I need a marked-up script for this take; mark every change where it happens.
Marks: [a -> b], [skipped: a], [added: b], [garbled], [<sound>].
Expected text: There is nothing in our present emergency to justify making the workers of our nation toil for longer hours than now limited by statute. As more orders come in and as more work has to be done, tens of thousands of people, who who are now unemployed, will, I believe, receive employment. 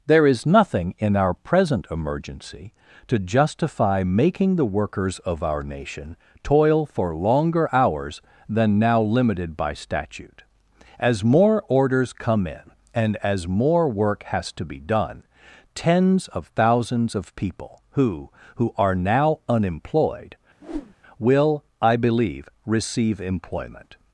There is nothing in our present emergency to justify making the workers of our nation toil for longer hours than now limited by statute. As more orders come in and as more work has to be done, tens of thousands of people, who who are now unemployed, [whoosh] will, I believe, receive employment.